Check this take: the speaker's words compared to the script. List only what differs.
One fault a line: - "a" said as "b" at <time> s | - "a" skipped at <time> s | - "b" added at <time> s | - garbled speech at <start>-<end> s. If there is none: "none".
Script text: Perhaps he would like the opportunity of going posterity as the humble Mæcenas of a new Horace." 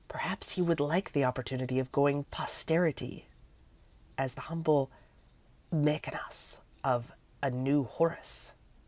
none